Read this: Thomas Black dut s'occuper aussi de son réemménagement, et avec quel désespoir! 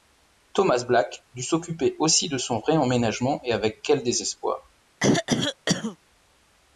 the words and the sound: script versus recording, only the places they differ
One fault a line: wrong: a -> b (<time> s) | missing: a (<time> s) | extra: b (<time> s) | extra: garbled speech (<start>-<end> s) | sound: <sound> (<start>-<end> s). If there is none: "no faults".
sound: throat clearing (5.0-6.0 s)